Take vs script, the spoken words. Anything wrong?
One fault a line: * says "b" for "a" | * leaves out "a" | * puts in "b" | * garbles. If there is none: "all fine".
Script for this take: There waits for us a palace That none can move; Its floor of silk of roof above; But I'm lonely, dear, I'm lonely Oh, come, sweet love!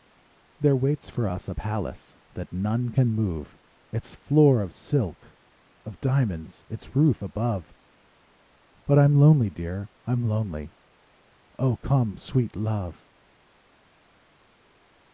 * puts in "diamonds Its"